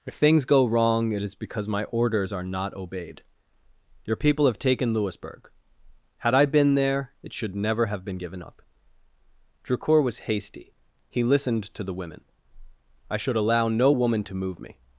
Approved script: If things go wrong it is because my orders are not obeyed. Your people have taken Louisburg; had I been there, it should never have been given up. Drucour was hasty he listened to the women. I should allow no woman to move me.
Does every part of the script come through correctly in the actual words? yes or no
yes